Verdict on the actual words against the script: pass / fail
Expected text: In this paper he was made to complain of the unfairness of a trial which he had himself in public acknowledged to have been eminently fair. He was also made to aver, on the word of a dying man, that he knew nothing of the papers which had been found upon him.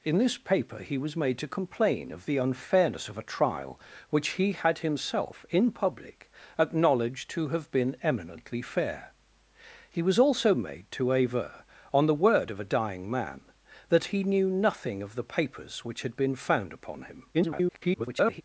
fail